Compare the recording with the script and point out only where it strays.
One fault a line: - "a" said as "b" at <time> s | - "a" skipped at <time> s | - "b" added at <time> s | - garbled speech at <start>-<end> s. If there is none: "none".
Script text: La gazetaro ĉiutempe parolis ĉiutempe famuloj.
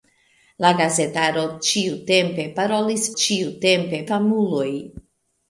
none